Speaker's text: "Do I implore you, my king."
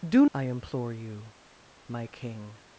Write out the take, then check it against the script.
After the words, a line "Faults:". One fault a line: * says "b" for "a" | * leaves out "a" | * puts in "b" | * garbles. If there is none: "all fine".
"Do I implore you, my king."
Faults:
all fine